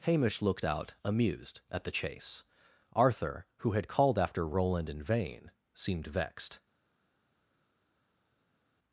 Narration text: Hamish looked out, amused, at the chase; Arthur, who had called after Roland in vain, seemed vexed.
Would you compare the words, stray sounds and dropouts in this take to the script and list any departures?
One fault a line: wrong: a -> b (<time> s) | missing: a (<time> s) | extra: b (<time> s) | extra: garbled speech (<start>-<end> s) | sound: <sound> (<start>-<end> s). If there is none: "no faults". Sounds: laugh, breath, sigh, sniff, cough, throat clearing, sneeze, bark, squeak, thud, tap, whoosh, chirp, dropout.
no faults